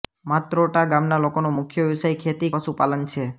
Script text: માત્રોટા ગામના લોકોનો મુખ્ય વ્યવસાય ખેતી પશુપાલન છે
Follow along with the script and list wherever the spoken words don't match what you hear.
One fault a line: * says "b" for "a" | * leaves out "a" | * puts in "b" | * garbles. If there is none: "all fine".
all fine